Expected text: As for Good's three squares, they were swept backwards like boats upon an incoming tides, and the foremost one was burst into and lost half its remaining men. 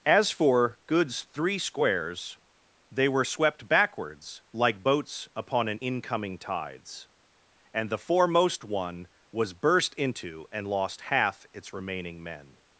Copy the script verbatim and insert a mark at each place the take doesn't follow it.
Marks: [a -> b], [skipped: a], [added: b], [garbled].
As for Good's three squares, they were swept backwards like boats upon an incoming tides, and the foremost one was burst into and lost half its remaining men.